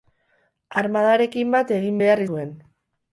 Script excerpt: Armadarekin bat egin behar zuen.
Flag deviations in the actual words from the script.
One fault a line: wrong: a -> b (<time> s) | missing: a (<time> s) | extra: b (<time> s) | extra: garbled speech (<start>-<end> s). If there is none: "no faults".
no faults